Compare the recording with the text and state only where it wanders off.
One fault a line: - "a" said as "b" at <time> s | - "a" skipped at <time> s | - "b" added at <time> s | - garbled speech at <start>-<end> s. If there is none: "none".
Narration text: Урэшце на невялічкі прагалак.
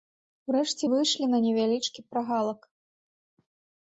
- "выйшлі" added at 0.9 s